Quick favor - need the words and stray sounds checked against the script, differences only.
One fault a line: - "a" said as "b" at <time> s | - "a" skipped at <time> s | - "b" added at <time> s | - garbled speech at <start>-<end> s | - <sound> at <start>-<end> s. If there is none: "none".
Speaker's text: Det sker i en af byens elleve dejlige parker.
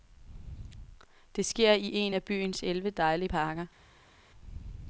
none